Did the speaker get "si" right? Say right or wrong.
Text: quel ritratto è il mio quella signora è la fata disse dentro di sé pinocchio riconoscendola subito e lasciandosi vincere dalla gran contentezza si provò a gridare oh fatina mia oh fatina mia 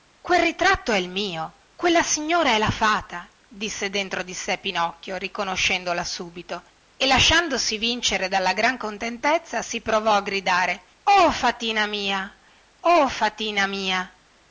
right